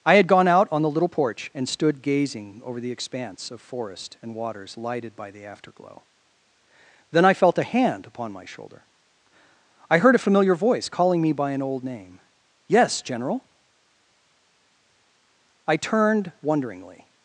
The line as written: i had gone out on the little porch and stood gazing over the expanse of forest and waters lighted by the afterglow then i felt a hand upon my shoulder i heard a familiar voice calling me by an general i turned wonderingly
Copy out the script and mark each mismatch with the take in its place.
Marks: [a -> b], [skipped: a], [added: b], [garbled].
i had gone out on the little porch and stood gazing over the expanse of forest and waters lighted by the afterglow then i felt a hand upon my shoulder i heard a familiar voice calling me by an [added: old name yes] general i turned wonderingly